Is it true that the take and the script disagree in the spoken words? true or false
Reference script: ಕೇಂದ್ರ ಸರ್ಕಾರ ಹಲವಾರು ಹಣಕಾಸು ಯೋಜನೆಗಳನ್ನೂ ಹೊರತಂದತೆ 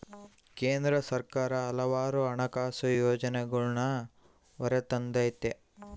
false